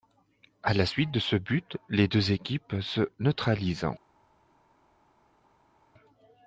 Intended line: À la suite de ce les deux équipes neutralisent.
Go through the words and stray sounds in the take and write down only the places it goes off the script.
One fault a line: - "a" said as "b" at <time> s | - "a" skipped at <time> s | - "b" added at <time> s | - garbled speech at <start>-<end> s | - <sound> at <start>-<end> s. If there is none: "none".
- "but" added at 1.3 s
- "se" added at 2.8 s